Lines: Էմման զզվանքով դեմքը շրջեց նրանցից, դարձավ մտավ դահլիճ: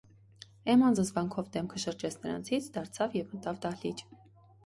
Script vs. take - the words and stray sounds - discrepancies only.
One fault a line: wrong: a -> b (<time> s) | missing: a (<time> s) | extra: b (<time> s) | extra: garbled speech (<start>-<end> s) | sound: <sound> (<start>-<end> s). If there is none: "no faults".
extra: և (3.2 s)